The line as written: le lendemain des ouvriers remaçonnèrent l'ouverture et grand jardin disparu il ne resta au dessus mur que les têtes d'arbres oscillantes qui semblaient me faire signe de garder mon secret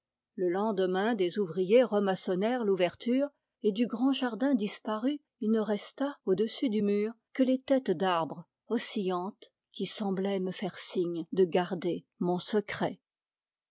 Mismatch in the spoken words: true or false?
true